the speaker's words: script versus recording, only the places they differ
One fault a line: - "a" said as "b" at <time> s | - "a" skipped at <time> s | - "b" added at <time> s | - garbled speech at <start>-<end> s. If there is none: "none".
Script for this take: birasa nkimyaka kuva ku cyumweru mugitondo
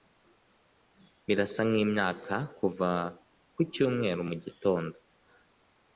none